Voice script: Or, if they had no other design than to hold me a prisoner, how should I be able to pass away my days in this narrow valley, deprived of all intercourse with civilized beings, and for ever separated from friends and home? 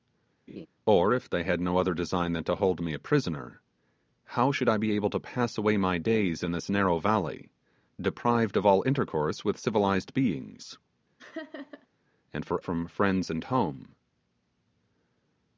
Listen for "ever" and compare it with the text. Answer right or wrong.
wrong